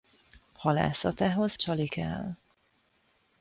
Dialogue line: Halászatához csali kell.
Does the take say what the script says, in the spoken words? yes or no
yes